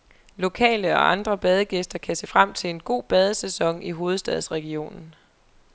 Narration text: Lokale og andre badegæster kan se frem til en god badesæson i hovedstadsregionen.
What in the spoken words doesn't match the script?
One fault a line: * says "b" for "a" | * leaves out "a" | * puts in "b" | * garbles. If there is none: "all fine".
all fine